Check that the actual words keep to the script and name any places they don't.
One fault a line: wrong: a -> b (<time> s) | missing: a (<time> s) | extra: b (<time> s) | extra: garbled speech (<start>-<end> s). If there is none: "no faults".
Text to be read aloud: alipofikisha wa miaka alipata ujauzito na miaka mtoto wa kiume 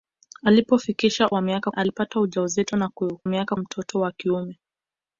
no faults